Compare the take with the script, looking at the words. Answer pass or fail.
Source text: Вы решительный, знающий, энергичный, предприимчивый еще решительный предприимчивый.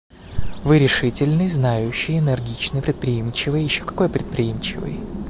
fail